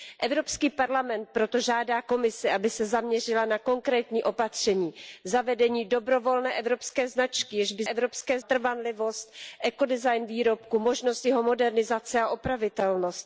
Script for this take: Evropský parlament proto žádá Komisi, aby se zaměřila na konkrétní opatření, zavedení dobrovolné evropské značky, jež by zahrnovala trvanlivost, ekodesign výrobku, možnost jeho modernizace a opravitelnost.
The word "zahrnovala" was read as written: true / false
false